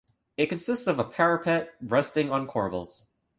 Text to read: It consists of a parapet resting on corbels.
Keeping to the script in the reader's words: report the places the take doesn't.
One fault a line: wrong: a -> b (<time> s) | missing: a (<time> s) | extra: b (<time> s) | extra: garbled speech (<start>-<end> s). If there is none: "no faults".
no faults